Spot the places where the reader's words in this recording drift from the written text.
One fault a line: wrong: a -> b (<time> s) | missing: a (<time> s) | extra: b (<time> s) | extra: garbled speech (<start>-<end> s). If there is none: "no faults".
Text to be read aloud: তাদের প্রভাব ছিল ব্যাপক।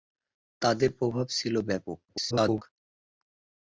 extra: garbled speech (2.1-2.6 s)